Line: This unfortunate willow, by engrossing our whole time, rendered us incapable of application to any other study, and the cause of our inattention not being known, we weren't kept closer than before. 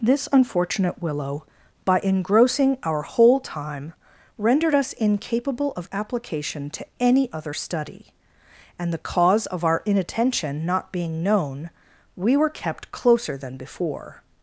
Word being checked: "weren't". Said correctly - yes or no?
no